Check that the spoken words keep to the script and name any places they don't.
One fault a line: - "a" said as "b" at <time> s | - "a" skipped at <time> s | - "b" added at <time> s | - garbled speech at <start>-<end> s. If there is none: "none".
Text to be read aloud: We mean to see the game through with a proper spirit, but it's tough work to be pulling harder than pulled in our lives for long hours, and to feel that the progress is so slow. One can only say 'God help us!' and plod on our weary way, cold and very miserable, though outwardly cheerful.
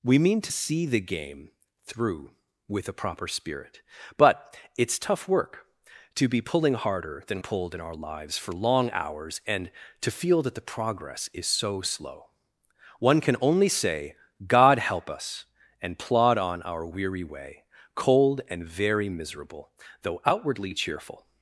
none